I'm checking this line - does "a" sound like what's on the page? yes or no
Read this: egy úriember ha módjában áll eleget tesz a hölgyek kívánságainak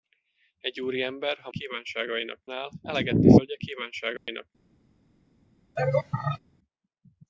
no